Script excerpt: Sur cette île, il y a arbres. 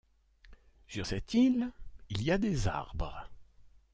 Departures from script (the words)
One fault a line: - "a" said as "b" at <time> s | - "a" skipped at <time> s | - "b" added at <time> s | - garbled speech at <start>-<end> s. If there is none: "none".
- "des" added at 2.4 s